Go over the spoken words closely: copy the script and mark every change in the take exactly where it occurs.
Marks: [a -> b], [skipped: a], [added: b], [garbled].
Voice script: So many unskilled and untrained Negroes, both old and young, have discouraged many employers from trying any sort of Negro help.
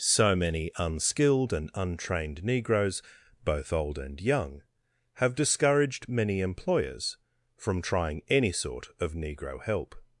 So many unskilled and untrained Negroes, both old and young, have discouraged many employers from trying any sort of Negro help.